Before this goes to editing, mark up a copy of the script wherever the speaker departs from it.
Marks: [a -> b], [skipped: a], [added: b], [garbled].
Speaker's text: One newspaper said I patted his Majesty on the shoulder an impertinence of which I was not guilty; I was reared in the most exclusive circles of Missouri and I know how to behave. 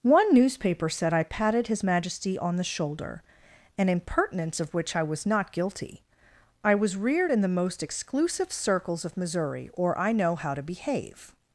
One newspaper said I patted his Majesty on the shoulder an impertinence of which I was not guilty; I was reared in the most exclusive circles of Missouri [and -> or] I know how to behave.